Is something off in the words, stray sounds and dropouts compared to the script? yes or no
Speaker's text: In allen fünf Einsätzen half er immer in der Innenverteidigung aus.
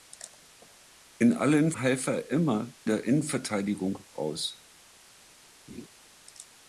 yes